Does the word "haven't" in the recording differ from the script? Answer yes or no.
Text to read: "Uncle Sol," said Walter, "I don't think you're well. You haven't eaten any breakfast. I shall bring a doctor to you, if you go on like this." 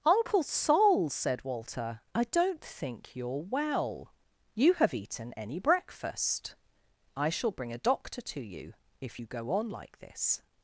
yes